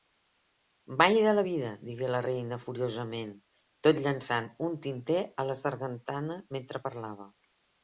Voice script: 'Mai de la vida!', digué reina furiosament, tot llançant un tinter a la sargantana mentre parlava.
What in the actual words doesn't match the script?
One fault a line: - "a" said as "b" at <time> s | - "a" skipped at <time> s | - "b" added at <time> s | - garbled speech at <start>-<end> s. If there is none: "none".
- "la" added at 2.1 s